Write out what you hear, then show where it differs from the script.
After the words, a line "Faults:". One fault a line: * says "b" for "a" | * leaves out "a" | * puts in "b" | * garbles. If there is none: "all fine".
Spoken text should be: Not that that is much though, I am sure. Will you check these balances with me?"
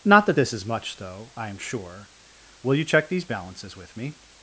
Not that this is much though, I am sure. Will you check these balances with me?"
Faults:
* says "this" for "that"